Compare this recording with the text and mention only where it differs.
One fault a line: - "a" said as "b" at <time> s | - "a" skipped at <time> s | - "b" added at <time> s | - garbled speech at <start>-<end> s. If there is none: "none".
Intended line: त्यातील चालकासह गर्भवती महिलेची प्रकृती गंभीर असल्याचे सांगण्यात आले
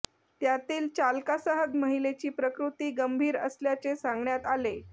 - "गर्भवती" skipped at 1.6 s